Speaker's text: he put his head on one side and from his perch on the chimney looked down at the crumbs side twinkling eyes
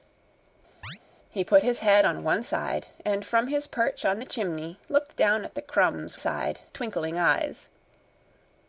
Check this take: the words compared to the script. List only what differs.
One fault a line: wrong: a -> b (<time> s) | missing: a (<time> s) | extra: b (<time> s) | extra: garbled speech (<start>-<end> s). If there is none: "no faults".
no faults